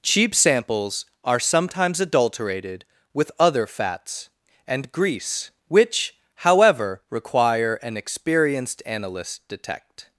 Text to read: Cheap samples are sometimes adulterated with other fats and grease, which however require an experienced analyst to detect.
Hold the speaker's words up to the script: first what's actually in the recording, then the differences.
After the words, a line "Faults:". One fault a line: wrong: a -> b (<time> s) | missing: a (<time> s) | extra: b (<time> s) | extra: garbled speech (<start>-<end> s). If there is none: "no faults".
Cheap samples are sometimes adulterated with other fats and grease, which however require an experienced analyst detect.
Faults:
missing: to (9.4 s)